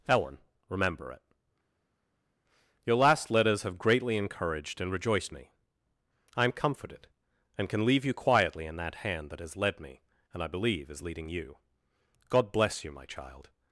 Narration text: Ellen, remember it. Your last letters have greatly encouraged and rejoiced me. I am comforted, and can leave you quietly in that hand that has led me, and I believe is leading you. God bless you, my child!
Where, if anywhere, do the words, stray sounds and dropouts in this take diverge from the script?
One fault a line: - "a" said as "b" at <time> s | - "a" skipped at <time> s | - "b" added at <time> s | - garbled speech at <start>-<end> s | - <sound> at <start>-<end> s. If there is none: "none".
none